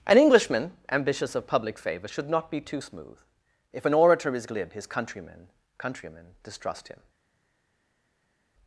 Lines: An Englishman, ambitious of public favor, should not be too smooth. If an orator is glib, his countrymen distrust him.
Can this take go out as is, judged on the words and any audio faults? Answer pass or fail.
fail